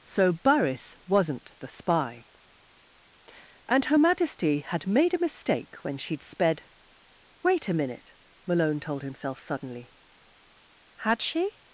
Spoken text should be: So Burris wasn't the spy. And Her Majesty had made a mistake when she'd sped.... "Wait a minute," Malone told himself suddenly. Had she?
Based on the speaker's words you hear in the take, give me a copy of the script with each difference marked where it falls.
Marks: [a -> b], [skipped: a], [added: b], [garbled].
So Burris wasn't the spy. And Her Majesty had made a mistake when she'd sped.... "Wait a minute," Malone told himself suddenly. Had she?